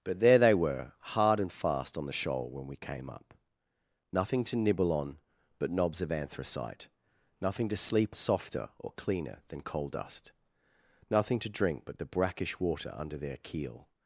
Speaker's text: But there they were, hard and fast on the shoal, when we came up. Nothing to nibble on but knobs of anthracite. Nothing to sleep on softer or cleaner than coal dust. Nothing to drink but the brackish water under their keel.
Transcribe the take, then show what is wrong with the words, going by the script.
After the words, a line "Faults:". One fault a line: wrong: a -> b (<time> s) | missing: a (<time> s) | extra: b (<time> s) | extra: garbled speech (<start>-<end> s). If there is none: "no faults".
But there they were, hard and fast on the shoal, when we came up. Nothing to nibble on but knobs of anthracite. Nothing to sleep softer or cleaner than coal dust. Nothing to drink but the brackish water under their keel.
Faults:
missing: on (8.2 s)